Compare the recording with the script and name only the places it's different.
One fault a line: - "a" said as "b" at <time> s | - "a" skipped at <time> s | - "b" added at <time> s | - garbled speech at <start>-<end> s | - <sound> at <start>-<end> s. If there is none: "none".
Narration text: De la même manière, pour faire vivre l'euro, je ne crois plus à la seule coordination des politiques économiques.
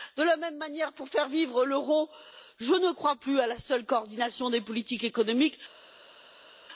none